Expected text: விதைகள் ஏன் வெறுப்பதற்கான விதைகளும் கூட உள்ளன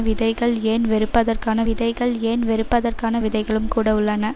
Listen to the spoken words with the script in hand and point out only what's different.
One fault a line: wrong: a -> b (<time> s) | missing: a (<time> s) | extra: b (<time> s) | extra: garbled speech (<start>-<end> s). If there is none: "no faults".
extra: விதைகள் ஏன் வெறுப்பதற்கான (1.6 s)